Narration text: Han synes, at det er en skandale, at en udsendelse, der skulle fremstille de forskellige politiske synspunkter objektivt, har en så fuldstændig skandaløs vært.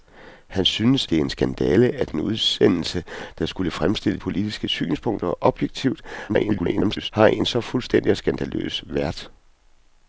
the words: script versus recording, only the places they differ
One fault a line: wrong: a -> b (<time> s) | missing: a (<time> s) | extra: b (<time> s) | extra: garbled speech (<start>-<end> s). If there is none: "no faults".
missing: at (1.1 s)
missing: de forskellige (4.2 s)
extra: garbled speech (6.3-7.1 s)